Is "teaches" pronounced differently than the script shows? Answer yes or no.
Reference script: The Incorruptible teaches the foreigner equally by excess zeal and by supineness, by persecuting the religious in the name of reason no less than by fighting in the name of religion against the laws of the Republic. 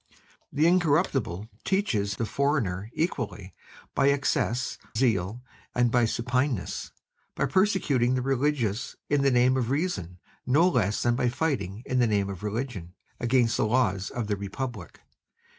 no